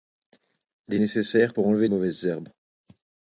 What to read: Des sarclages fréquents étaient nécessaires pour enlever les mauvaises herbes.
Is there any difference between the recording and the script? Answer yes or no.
yes